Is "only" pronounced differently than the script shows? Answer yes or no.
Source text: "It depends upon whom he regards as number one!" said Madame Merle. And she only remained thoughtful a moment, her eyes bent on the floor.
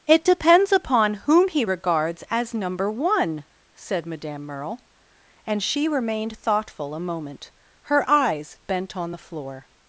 yes